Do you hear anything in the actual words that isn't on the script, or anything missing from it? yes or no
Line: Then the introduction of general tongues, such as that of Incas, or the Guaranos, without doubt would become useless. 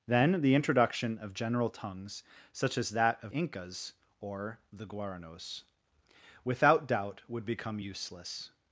no